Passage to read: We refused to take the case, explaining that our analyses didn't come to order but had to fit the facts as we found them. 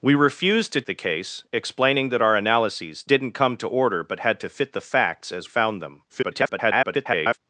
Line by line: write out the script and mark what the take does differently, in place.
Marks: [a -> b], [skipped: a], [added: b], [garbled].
We refused to [skipped: take] the case, explaining that our analyses didn't come to order but had to fit the facts as [skipped: we] found them. [garbled]